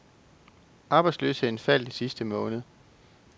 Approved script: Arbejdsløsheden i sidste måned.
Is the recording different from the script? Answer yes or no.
yes